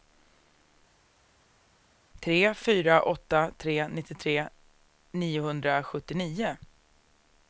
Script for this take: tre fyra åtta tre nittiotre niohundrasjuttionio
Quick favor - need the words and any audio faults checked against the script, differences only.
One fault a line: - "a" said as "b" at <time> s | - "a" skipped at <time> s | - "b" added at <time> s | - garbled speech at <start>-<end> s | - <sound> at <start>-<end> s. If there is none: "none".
none